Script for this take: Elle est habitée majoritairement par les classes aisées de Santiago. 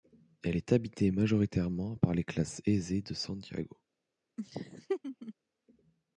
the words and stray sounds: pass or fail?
fail